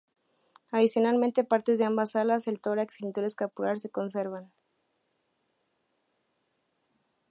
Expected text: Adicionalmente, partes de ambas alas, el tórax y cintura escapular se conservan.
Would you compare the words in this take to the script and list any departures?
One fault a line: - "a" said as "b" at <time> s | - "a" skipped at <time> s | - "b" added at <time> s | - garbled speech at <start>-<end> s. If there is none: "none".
none